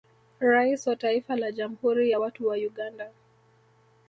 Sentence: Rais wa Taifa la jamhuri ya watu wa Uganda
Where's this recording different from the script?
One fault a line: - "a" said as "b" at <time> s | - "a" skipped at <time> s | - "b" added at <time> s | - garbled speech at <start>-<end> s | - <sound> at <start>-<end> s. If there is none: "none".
none